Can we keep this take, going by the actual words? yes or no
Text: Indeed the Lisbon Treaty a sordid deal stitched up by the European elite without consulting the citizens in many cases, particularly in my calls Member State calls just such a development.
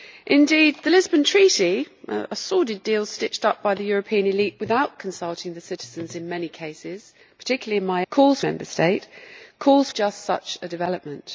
yes